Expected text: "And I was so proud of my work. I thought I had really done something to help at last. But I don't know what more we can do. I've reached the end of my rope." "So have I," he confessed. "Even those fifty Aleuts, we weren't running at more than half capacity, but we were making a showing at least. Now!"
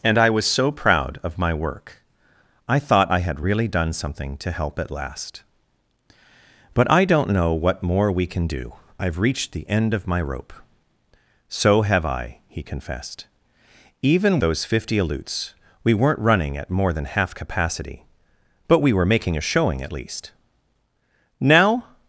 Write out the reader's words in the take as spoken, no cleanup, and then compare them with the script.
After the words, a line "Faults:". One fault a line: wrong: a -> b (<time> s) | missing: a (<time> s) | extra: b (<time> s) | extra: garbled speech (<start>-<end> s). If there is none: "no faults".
"And I was so proud of my work. I thought I had really done something to help at last. But I don't know what more we can do. I've reached the end of my rope." "So have I," he confessed. "Even those fifty Aleuts, we weren't running at more than half capacity, but we were making a showing at least. Now!"
Faults:
no faults